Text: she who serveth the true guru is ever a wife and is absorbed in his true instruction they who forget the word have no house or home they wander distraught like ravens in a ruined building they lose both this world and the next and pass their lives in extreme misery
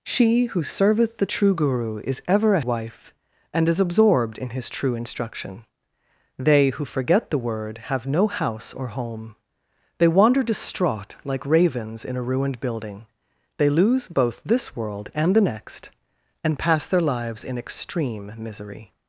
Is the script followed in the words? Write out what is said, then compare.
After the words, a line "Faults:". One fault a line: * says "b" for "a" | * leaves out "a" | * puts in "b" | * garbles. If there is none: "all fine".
she who serveth the true guru is ever a wife and is absorbed in his true instruction they who forget the word have no house or home they wander distraught like ravens in a ruined building they lose both this world and the next and pass their lives in extreme misery
Faults:
all fine